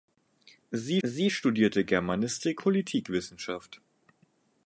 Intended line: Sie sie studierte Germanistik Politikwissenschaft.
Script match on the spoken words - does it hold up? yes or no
yes